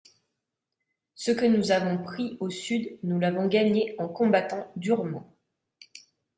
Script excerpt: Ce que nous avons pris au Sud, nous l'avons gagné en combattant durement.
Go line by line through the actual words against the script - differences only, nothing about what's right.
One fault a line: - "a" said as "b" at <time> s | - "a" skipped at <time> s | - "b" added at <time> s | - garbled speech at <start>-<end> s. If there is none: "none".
none